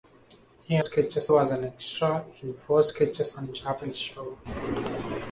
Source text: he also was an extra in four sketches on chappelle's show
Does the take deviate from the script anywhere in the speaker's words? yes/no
yes